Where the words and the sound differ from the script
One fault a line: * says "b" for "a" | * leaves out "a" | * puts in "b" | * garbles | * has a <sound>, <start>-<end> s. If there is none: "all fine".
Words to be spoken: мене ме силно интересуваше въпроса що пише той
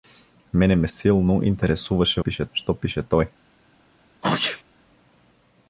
* says "пише" for "въпроса"
* has a sneeze, 4.2-4.6 s